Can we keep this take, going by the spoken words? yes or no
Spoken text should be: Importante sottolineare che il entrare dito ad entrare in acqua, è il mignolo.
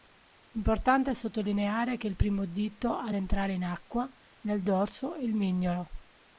no